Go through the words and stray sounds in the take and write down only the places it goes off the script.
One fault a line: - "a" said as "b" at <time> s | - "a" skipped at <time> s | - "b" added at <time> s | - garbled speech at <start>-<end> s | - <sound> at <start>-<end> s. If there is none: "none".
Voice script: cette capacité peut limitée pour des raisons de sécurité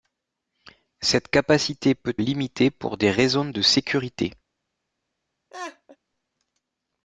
- laugh at 5.5-6.0 s